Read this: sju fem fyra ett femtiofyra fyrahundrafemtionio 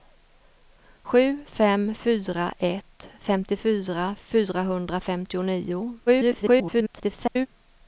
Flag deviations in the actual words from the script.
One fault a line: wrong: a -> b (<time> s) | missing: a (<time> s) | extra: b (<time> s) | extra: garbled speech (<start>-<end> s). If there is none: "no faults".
extra: garbled speech (6.1-7.5 s)